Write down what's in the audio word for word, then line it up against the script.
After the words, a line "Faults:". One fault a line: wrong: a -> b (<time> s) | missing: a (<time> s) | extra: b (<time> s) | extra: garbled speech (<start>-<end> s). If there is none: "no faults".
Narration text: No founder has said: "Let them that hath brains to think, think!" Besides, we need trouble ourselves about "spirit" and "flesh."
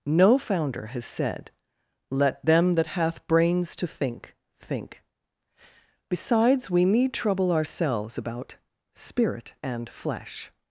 No founder has said: "Let them that hath brains to think, think!" Besides, we need trouble ourselves about "spirit" and "flesh."
Faults:
no faults